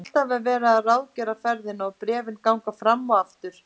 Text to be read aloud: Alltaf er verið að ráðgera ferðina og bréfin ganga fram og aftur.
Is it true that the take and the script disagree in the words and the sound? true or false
false